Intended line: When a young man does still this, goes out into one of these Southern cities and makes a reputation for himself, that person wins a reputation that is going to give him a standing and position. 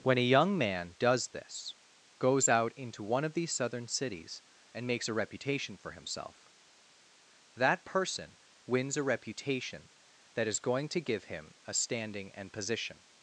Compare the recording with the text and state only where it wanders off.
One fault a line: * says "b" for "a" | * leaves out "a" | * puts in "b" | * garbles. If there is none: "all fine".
* leaves out "still"